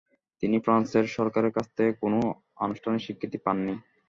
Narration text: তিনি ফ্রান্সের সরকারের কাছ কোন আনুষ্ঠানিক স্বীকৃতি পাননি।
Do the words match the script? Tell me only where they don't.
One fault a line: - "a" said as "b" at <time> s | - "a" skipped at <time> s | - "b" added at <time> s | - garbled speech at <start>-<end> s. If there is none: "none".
- "থেকে" added at 1.8 s